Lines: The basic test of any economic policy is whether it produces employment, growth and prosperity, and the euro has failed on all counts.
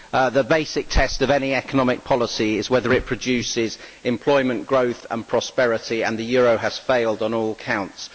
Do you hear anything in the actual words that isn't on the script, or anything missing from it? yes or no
no